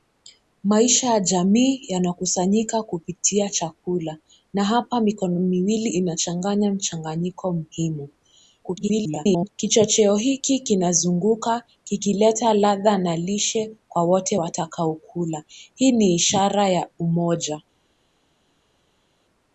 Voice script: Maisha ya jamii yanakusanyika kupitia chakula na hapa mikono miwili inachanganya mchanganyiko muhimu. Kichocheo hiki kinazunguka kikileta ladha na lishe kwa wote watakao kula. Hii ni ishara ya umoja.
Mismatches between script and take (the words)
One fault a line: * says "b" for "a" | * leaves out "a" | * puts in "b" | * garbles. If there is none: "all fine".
* garbles